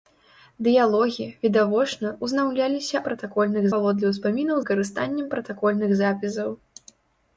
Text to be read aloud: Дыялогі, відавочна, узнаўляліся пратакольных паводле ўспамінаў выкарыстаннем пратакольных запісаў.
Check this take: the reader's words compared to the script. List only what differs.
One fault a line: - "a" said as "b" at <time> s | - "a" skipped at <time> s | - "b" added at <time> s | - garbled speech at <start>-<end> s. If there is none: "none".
none